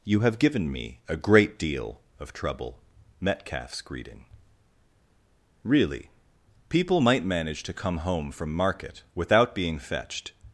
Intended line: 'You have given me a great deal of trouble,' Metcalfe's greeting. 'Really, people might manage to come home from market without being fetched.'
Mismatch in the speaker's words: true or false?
false